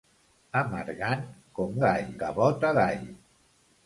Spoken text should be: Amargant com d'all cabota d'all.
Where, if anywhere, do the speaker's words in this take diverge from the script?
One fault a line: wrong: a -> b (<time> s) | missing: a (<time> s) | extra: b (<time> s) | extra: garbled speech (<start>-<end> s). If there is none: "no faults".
no faults